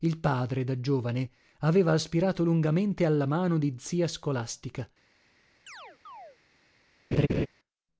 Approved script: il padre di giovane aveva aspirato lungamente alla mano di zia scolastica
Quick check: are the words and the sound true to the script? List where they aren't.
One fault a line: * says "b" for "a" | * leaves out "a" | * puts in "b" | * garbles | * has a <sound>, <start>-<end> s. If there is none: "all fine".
* says "da" for "di"
* has a chirp, 5.7-6.4 s
* has a laugh, 7.1-7.5 s